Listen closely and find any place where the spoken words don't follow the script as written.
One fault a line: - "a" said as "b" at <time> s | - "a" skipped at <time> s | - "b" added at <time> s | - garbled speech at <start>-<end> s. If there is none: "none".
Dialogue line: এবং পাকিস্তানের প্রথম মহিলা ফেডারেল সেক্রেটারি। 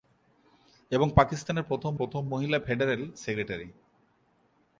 - "প্রথম" added at 2.0 s